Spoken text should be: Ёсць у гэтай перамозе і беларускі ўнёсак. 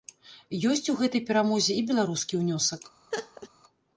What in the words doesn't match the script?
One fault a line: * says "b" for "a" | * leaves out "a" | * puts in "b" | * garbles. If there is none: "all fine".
all fine